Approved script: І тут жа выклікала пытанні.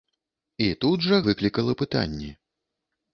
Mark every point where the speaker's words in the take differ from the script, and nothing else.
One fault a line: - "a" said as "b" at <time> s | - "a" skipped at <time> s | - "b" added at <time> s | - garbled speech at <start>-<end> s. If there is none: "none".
none